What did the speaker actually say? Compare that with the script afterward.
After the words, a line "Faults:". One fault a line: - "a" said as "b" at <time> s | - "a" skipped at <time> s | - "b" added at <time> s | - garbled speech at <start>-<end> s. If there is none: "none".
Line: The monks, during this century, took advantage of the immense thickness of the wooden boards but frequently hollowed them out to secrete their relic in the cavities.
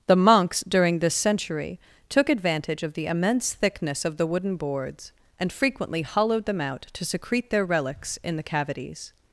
The monks, during this century, took advantage of the immense thickness of the wooden boards and frequently hollowed them out to secrete their relics in the cavities.
Faults:
- "but" said as "and" at 5.4 s
- "relic" said as "relics" at 7.6 s